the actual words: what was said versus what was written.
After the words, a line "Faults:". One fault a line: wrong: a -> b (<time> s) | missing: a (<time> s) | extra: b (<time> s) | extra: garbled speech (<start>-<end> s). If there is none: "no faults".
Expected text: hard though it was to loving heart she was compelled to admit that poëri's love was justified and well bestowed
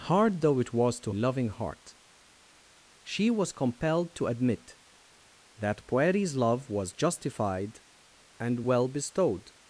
hard though it was to loving heart she was compelled to admit that poëri's love was justified and well bestowed
Faults:
no faults